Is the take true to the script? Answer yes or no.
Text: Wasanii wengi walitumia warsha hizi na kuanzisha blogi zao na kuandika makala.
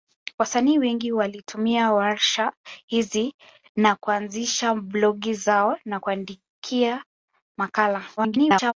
no